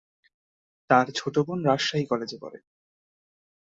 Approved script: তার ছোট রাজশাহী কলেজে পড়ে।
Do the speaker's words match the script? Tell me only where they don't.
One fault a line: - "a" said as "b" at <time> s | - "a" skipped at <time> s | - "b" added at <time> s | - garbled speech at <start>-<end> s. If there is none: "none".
- "বোন" added at 1.4 s